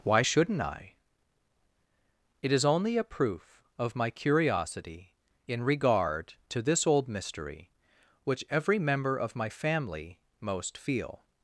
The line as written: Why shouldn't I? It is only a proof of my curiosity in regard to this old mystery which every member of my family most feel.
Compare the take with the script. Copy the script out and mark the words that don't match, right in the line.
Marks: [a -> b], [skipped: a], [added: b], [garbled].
Why shouldn't I? It is only a proof of my curiosity in regard to this old mystery which every member of my family most feel.